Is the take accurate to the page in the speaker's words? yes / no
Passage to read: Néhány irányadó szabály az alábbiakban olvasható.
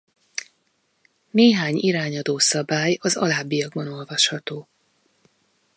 yes